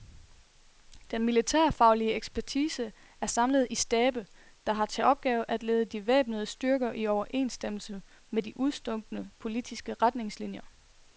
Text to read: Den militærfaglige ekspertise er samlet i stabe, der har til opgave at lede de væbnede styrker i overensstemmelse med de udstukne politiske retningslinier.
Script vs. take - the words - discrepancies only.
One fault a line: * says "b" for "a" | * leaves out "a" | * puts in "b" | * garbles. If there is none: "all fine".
all fine